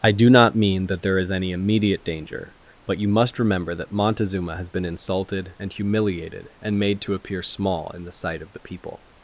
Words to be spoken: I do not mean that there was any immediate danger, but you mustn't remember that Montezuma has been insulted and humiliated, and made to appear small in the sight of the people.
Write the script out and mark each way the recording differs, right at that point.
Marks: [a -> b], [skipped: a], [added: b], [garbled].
I do not mean that there [was -> is] any immediate danger, but you [mustn't -> must] remember that Montezuma has been insulted and humiliated, and made to appear small in the sight of the people.